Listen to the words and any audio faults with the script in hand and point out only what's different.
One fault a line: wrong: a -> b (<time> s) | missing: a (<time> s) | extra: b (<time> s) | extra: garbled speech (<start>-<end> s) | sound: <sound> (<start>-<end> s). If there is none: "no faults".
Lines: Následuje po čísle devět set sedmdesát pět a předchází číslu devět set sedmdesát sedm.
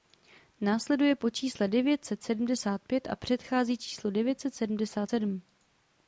no faults